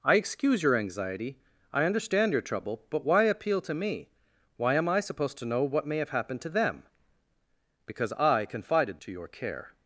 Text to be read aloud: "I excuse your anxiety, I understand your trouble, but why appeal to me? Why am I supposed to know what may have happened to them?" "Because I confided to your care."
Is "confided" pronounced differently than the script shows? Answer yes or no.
no